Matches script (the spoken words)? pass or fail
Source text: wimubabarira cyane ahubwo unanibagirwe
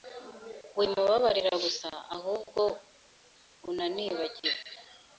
fail